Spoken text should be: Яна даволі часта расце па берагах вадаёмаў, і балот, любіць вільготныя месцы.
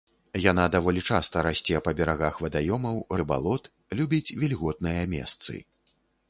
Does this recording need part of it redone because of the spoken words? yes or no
no